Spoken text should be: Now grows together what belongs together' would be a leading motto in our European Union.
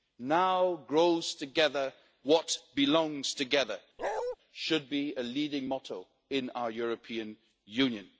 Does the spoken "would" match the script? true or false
false